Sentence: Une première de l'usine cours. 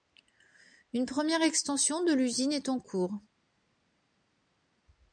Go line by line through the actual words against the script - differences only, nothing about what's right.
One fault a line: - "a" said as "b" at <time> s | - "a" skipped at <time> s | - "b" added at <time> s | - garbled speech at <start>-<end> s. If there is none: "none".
- "extension" added at 1.4 s
- "est en" added at 2.5 s